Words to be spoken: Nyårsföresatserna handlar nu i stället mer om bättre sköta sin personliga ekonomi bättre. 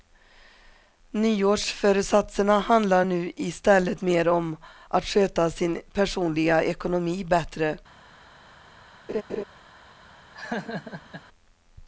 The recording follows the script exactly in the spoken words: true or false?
false